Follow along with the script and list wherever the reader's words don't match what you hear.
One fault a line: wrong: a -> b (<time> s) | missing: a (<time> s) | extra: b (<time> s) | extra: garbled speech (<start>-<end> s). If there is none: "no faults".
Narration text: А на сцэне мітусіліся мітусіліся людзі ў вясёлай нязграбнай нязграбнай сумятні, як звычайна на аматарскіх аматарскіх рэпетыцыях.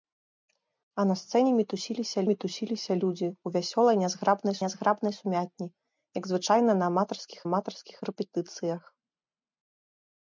no faults